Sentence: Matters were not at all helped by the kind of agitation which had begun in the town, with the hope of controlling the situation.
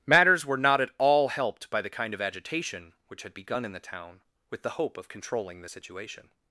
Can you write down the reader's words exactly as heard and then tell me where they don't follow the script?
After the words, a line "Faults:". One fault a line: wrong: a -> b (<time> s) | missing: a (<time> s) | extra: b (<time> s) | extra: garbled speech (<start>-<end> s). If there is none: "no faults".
Matters were not at all helped by the kind of agitation which had begun in the town, with the hope of controlling the situation.
Faults:
no faults